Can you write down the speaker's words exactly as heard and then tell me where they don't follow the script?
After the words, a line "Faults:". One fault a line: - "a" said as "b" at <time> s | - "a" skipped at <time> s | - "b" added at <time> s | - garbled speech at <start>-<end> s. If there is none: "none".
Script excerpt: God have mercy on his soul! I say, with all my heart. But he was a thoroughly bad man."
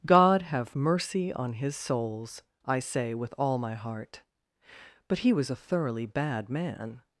God have mercy on his souls! I say, with all my heart. But he was a thoroughly bad man."
Faults:
- "soul" said as "souls" at 1.8 s